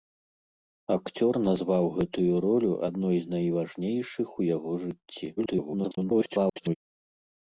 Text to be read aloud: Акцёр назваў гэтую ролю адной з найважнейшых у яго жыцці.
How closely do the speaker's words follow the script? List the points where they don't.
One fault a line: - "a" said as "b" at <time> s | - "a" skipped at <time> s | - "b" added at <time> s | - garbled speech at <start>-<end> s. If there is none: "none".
- garbled speech at 5.4-6.7 s